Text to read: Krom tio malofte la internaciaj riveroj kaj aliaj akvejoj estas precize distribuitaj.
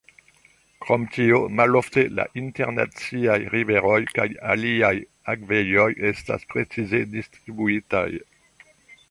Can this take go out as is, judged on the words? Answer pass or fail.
pass